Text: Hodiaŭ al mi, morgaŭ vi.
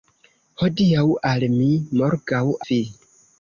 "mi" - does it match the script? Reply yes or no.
yes